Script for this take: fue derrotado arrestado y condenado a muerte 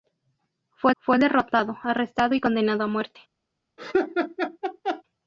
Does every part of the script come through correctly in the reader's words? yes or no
no